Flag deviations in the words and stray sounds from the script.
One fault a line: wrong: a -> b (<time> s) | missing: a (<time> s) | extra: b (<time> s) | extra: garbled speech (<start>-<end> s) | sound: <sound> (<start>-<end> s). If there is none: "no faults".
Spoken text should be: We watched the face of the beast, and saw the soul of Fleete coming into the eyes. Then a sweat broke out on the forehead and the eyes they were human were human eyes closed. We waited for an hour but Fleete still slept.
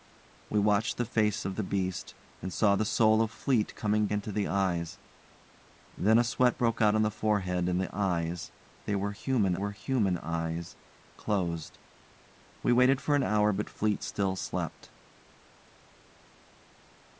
no faults